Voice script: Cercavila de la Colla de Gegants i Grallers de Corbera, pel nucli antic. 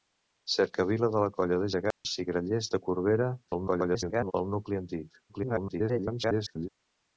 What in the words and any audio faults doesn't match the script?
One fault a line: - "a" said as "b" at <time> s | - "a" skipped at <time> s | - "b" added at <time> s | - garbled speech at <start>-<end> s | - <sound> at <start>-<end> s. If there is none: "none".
- dropout at 1.9-2.0 s
- garbled speech at 3.5-4.3 s
- garbled speech at 5.3-6.7 s